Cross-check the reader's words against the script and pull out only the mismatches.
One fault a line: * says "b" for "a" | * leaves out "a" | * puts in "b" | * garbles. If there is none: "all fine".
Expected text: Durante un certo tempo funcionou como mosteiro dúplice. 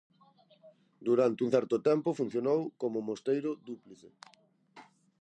all fine